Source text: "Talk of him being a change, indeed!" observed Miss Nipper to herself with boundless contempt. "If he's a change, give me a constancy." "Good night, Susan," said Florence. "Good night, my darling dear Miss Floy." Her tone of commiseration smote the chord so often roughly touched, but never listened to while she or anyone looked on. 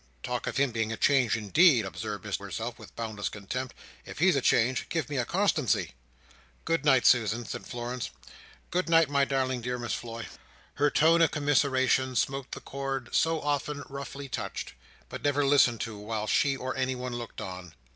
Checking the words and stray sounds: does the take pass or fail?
fail